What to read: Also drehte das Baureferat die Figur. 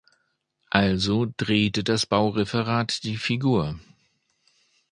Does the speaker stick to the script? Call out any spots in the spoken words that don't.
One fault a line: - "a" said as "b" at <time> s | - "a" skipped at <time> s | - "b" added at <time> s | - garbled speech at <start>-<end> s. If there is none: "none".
none